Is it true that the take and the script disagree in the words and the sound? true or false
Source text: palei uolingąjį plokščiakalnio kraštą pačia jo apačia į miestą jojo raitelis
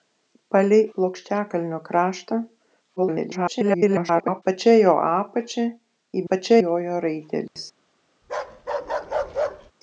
true